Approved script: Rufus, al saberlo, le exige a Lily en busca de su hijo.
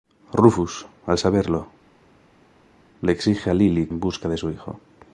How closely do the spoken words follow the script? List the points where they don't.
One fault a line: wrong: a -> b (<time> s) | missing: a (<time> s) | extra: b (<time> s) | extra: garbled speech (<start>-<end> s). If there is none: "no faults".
no faults